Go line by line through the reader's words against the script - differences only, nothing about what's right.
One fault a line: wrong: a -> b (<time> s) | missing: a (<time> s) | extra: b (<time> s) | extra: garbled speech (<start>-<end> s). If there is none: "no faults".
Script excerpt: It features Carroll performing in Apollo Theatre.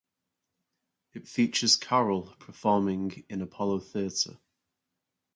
no faults